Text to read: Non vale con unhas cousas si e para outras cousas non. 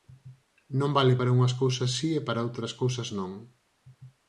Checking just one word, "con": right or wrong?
wrong